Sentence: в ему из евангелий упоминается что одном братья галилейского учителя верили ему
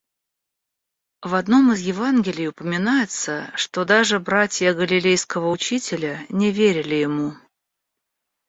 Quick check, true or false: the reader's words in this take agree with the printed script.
false